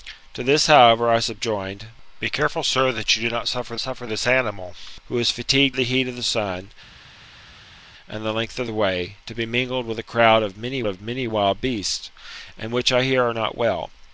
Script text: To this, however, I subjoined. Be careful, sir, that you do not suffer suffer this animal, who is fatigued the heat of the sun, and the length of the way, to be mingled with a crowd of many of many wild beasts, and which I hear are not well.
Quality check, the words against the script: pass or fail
pass